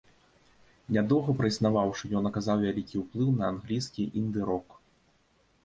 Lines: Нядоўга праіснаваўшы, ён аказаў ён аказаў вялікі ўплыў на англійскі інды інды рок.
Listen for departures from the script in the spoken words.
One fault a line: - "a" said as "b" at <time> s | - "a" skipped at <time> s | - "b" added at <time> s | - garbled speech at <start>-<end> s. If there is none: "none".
- "ён аказаў" skipped at 2.6 s
- "інды" skipped at 4.4 s